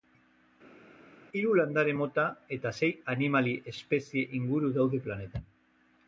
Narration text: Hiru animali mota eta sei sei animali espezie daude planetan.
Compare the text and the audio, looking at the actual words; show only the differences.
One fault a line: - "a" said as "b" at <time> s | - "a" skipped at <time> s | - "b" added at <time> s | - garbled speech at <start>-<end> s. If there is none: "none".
- "animali" said as "landare" at 1.6 s
- "sei" skipped at 2.9 s
- "inguru" added at 4.4 s